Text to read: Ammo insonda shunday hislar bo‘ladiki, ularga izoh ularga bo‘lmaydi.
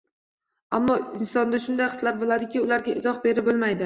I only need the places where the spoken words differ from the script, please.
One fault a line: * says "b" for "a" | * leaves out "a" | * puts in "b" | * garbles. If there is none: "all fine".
* says "berib" for "ularga"